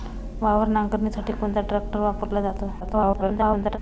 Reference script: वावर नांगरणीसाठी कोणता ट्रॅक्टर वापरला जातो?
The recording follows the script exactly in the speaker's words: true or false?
false